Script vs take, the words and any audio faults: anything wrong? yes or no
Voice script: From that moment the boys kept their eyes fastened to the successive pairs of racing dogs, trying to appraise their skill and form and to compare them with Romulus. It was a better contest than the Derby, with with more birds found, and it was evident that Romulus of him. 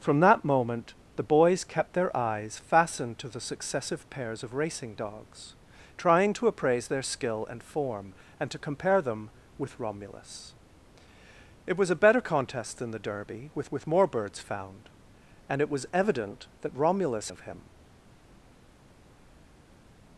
no